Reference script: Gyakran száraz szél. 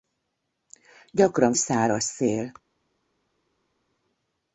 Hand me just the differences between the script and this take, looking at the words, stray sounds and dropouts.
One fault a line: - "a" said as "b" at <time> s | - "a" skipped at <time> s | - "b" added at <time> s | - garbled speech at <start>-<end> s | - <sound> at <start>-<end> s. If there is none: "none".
none